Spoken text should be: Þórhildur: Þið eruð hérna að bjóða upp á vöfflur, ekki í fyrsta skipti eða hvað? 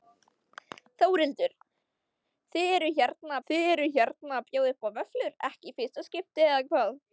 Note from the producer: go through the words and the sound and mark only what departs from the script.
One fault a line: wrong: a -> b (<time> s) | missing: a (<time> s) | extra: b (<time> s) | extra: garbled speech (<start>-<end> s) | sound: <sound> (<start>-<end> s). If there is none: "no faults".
extra: Þið eruð hérna (3.5 s)